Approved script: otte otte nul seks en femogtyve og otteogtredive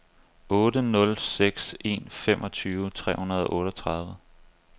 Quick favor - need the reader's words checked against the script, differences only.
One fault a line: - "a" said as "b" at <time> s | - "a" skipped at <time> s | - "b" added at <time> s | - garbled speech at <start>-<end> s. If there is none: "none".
- "otte" skipped at 0.8 s
- "tre hundrede" added at 2.9 s